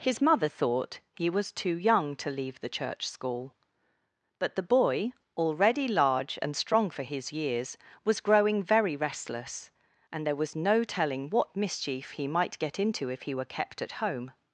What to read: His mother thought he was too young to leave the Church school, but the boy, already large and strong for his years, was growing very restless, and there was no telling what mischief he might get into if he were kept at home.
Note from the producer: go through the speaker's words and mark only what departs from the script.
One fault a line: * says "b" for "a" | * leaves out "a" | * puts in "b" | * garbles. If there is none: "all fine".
all fine